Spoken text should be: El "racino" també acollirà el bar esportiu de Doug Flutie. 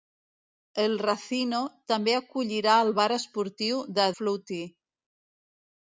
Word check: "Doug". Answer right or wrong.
wrong